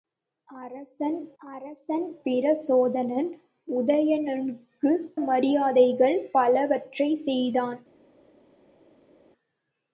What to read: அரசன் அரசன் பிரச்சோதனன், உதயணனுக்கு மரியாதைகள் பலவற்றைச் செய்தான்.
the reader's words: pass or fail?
pass